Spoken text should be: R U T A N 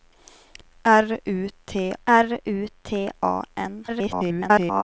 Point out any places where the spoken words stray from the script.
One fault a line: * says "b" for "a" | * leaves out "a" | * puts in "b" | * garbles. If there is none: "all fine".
* puts in "r U T"
* garbles